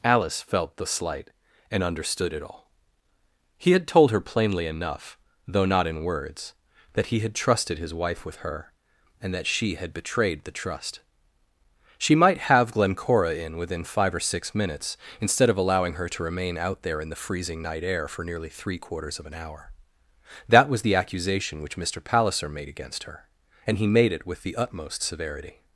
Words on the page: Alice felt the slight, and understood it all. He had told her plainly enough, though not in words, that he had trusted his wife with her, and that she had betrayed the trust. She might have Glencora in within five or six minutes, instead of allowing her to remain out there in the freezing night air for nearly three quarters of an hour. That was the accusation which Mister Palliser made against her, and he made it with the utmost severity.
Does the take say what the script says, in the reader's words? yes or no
yes